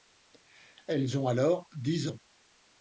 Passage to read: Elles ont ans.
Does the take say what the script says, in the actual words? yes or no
no